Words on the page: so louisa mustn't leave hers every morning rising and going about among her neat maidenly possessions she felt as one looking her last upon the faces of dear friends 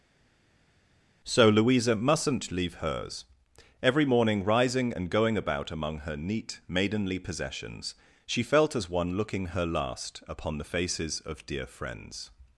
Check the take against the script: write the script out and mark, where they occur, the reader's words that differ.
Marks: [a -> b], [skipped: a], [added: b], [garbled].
so louisa mustn't leave hers every morning rising and going about among her neat maidenly possessions she felt as one looking her last upon the faces of dear friends